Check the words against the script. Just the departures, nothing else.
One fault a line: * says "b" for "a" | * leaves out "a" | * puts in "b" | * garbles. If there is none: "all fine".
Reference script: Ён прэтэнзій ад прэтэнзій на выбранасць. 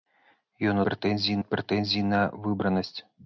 all fine